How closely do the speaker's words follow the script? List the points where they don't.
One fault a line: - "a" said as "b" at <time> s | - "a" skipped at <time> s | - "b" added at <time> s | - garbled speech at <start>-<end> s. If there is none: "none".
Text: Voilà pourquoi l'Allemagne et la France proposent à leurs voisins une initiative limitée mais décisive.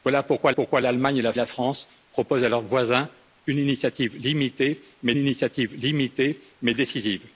- "pourquoi" added at 0.5 s
- "la" added at 1.3 s
- "initiative limitée mais" added at 5.2 s